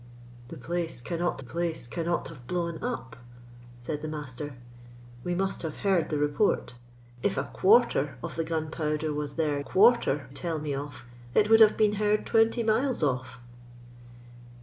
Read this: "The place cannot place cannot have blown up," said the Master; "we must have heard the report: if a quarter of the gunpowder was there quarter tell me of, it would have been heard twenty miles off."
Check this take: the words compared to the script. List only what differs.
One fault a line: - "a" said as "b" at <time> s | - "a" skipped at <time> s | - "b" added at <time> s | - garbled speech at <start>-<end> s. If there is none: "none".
none